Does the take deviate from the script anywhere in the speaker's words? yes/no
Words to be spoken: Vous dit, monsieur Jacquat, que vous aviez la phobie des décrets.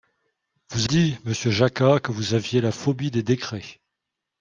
no